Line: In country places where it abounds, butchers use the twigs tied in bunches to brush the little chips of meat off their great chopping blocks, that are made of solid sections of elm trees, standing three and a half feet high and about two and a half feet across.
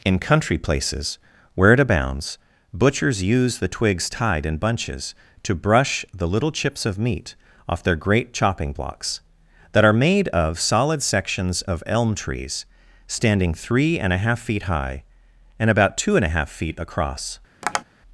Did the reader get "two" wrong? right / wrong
right